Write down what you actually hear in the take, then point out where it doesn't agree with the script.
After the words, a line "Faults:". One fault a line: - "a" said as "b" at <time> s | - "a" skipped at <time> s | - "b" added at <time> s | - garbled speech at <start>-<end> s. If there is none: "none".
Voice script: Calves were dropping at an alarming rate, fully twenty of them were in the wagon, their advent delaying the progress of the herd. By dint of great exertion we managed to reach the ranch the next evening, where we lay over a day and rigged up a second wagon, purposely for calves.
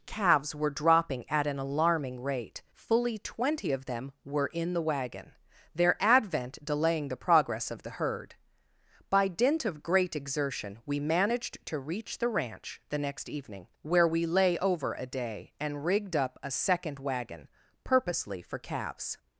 Calves were dropping at an alarming rate, fully twenty of them were in the wagon, their advent delaying the progress of the herd. By dint of great exertion we managed to reach the ranch the next evening, where we lay over a day and rigged up a second wagon, purposely for calves.
Faults:
none